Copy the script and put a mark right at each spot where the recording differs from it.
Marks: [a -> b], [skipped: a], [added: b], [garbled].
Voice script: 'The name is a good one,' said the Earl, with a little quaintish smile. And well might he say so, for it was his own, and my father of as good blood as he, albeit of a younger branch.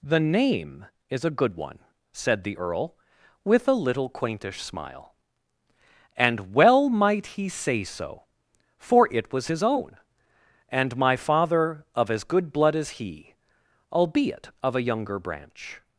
'The name is a good one,' said the Earl, with a little quaintish smile. And well might he say so, for it was his own, and my father of as good blood as he, albeit of a younger branch.